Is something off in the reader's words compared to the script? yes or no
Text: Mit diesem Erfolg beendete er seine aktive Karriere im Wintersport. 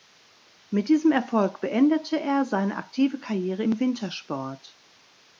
no